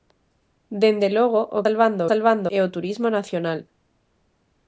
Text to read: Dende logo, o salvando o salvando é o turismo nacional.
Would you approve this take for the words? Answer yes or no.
yes